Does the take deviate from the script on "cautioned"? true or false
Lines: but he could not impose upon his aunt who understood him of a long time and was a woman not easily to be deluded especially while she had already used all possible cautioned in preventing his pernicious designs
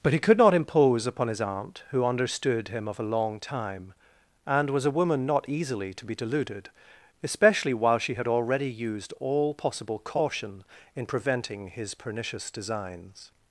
true